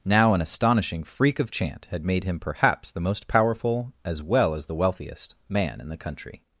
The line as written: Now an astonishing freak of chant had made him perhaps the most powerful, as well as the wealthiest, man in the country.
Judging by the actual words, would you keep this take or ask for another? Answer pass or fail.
pass